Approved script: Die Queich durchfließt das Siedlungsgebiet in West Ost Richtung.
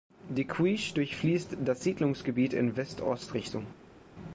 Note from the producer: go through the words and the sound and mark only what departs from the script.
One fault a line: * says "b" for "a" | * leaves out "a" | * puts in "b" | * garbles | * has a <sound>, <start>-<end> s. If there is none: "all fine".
all fine